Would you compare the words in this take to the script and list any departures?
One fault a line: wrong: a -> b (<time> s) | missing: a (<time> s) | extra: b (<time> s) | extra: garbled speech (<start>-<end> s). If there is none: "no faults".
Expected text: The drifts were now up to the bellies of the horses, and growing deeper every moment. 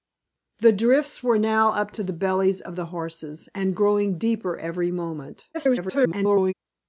extra: garbled speech (5.5-6.5 s)